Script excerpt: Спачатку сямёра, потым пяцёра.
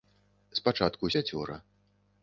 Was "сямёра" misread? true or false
true